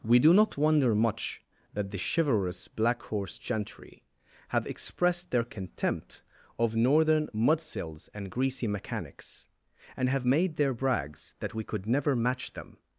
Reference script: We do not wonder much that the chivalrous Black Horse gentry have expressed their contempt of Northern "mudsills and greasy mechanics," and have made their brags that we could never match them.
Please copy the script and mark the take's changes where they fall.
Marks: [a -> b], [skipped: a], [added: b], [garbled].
We do not wonder much that the chivalrous Black Horse gentry have expressed their contempt of Northern "mudsills and greasy mechanics," and have made their brags that we could never match them.